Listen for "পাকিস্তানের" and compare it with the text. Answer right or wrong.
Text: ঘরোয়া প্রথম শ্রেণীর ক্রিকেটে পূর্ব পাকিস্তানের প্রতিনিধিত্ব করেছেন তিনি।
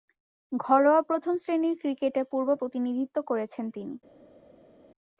wrong